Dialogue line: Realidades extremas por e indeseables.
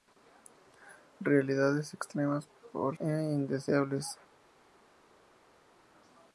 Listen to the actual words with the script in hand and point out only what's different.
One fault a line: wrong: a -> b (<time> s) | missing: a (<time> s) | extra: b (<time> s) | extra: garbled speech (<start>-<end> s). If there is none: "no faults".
no faults